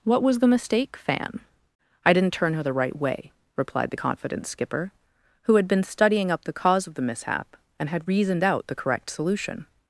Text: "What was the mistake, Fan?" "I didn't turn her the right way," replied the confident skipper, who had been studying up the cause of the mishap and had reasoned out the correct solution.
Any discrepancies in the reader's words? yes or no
no